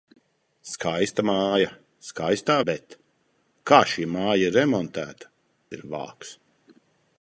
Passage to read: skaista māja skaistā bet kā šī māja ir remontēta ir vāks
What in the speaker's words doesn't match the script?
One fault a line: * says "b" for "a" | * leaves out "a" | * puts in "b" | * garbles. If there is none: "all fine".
all fine